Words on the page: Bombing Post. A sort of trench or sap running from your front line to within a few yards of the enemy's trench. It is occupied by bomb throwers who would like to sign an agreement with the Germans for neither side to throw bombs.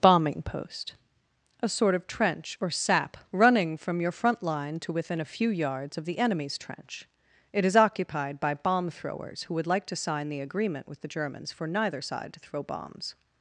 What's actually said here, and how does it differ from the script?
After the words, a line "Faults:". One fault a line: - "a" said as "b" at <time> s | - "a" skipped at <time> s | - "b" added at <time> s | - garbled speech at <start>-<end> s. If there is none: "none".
Bombing Post. A sort of trench or sap running from your front line to within a few yards of the enemy's trench. It is occupied by bomb throwers who would like to sign the agreement with the Germans for neither side to throw bombs.
Faults:
- "an" said as "the" at 10.3 s